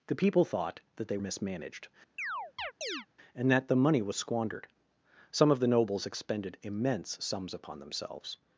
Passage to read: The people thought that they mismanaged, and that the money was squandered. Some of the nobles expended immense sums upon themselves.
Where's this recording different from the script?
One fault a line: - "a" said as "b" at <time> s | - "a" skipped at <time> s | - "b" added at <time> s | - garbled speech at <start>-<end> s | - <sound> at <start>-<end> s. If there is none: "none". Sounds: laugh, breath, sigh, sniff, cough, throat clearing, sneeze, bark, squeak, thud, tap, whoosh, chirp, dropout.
- chirp at 2.2-3.1 s